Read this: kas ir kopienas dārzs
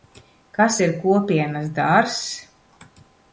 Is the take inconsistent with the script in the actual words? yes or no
no